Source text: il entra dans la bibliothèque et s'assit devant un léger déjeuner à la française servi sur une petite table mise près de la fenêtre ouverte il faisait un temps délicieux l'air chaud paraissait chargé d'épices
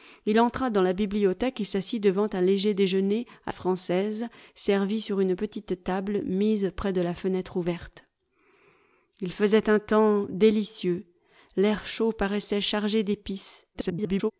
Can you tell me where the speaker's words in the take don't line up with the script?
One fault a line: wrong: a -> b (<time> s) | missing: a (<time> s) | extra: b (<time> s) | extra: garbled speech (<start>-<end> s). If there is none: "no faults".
missing: la (3.5 s)
extra: garbled speech (13.7-14.3 s)